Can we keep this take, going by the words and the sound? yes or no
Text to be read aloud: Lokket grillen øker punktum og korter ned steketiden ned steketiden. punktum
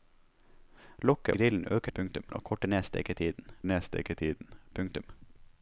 yes